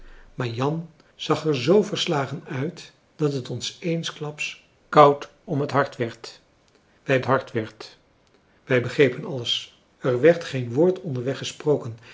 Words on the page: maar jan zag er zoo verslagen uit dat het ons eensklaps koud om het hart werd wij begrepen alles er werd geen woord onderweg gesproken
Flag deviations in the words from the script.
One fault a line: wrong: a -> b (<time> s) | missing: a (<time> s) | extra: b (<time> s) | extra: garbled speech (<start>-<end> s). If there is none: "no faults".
extra: hart werd wij (7.2 s)